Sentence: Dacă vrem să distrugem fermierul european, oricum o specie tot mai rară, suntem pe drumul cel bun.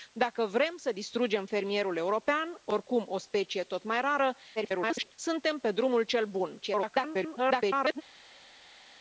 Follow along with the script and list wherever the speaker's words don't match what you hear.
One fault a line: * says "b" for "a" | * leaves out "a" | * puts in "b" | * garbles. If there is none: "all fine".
* garbles
* garbles